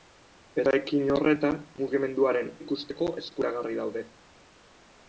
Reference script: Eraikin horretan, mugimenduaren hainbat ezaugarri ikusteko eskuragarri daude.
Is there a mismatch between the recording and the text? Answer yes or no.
yes